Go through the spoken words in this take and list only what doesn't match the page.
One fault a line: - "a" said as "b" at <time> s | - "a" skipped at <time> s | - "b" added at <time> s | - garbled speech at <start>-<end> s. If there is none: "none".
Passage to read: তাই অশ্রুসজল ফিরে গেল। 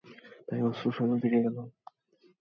none